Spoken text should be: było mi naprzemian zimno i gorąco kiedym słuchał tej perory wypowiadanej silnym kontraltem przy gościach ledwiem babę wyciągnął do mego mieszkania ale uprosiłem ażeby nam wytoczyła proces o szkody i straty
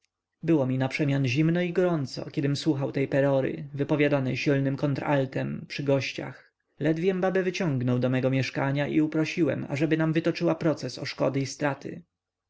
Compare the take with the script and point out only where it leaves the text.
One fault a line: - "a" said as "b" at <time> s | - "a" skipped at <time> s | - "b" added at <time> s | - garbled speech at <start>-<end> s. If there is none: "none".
- "ale" said as "i" at 8.9 s